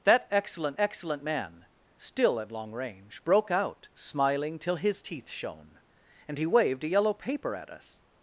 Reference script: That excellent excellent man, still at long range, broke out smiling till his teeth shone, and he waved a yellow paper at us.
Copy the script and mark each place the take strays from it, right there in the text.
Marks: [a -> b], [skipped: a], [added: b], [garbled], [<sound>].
That excellent excellent man, still at long range, broke out smiling till his teeth shone, and he waved a yellow paper at us.